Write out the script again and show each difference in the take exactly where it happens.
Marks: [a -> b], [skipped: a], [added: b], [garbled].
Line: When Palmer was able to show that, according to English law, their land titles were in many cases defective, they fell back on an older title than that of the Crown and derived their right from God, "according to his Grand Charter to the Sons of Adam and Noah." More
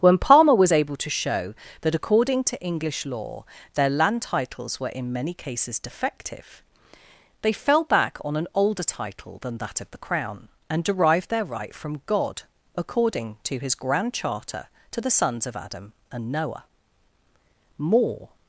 When Palmer was able to show that, according to English law, their land titles were in many cases defective, they fell back on an older title than that of the Crown and derived their right from God, "according to his Grand Charter to the Sons of Adam and Noah." More